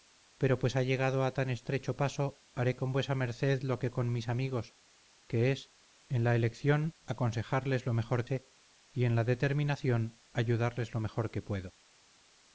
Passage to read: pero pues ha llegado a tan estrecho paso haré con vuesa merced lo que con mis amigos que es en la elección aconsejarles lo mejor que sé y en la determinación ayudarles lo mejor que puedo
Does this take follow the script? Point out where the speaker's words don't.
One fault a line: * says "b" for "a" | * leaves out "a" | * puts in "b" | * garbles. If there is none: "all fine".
* leaves out "que"